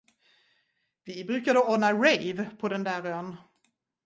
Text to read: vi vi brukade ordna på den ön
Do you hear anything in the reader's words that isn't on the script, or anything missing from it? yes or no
yes